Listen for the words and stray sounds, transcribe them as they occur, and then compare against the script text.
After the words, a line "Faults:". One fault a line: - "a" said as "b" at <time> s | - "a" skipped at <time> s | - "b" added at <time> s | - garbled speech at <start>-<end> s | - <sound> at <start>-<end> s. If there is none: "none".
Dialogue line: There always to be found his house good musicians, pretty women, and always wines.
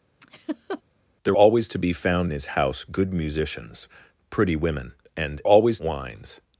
There always to be found his house good musicians, pretty women, and always wines.
Faults:
- laugh at 0.2-0.8 s